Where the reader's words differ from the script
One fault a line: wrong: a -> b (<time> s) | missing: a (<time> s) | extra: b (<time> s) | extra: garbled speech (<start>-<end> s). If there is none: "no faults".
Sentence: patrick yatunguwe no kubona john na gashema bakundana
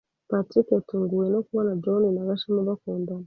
no faults